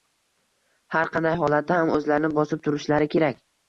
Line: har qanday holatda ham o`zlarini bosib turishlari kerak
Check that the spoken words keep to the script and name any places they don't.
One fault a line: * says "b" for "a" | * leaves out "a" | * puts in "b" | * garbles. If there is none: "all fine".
all fine